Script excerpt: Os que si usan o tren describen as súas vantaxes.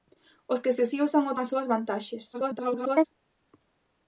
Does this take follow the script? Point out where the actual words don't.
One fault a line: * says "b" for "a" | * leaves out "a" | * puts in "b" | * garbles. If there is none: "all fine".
* puts in "que"
* leaves out "tren describen"
* garbles